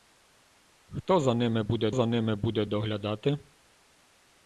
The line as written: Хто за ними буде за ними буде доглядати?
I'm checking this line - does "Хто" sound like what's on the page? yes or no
yes